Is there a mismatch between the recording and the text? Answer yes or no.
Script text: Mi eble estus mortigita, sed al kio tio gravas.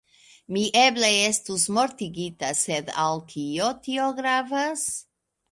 no